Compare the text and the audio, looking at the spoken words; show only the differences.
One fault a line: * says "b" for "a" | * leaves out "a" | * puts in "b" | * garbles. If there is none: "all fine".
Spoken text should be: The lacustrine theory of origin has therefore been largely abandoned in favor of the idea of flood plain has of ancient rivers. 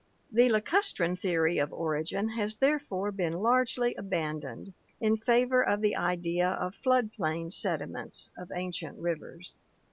* says "sediments" for "has"